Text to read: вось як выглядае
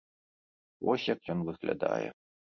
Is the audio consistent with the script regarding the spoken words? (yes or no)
no